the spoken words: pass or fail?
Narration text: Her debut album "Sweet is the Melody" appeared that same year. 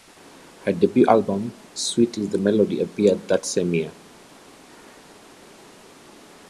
pass